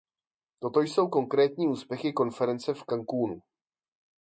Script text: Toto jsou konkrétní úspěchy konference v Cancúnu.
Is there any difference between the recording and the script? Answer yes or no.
no